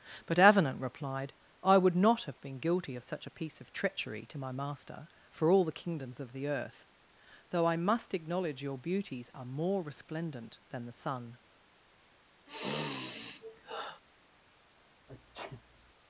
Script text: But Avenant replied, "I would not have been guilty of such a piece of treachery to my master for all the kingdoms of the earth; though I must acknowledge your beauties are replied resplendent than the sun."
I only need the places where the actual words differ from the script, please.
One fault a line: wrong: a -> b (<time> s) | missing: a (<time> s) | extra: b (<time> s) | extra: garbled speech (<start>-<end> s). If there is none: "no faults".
wrong: replied -> more (9.4 s)